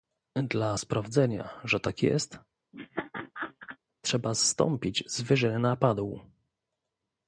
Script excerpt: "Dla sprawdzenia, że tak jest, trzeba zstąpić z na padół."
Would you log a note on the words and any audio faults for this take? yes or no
yes